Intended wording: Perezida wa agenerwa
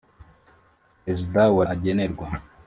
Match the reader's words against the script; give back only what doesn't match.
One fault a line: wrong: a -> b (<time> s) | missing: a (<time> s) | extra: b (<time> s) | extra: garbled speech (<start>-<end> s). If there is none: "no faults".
no faults